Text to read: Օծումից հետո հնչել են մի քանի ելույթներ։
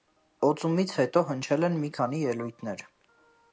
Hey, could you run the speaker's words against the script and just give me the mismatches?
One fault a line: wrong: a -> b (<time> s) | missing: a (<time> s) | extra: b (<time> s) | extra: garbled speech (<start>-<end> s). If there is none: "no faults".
no faults